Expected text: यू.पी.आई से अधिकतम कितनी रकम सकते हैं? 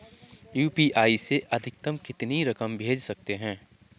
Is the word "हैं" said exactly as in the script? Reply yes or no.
yes